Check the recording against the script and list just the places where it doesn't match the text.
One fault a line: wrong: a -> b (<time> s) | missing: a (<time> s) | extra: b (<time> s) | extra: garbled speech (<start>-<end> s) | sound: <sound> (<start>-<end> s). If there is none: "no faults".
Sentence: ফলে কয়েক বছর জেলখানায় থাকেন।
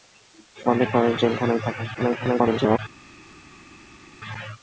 missing: বছর (1.1 s)
extra: garbled speech (1.9-2.8 s)